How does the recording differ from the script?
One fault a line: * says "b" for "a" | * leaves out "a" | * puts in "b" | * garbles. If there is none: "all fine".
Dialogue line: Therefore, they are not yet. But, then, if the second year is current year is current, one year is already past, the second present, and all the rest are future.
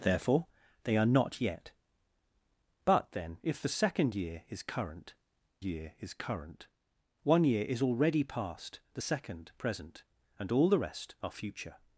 all fine